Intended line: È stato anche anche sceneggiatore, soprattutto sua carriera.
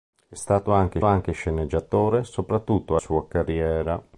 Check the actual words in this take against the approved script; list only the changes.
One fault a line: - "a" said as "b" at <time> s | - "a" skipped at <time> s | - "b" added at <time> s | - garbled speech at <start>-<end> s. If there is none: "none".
none